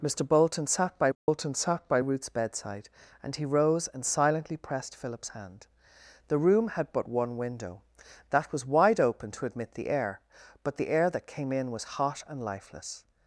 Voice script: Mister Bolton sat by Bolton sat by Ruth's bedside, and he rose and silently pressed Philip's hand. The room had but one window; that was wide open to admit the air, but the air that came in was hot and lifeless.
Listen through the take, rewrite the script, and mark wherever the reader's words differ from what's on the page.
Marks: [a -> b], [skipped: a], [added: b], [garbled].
Mister Bolton sat by Bolton sat by Ruth's bedside, and he rose and silently pressed Philip's hand. The room had but one window; that was wide open to admit the air, but the air that came in was hot and lifeless.